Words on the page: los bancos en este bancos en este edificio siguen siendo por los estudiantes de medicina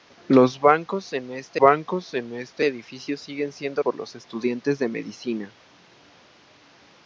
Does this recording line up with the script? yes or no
yes